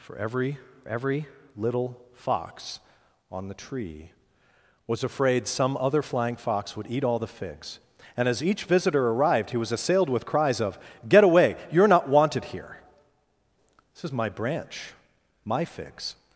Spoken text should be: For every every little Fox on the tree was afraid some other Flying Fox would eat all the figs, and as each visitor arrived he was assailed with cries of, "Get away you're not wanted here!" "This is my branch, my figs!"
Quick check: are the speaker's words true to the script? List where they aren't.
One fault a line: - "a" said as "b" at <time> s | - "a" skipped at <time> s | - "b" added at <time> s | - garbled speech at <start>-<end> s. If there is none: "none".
none